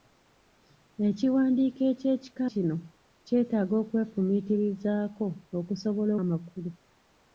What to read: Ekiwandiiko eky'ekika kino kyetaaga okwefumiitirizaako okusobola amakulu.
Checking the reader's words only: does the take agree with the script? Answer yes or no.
yes